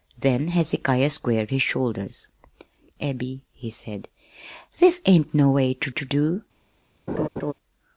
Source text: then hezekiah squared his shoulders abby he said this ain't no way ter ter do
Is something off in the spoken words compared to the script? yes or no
no